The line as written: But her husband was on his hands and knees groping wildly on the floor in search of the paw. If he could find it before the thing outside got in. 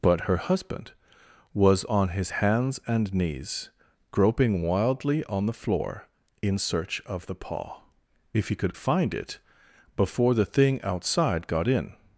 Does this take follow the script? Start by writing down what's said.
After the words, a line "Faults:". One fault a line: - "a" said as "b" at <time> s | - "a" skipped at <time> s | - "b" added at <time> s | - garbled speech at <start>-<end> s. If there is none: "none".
But her husband was on his hands and knees groping wildly on the floor in search of the paw. If he could find it before the thing outside got in.
Faults:
none